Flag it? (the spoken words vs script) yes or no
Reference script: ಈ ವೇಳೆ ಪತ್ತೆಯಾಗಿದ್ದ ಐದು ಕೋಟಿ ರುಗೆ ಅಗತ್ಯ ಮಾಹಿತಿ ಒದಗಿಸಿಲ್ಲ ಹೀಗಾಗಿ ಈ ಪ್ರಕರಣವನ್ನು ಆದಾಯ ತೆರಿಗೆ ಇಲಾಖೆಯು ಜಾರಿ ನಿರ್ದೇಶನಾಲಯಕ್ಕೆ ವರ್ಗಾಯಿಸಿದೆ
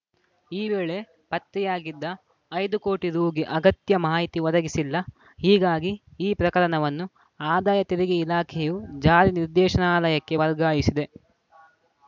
no